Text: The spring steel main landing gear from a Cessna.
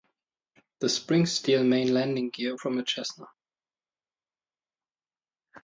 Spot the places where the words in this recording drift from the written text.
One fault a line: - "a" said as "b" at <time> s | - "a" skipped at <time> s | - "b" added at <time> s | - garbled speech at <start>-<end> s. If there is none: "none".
none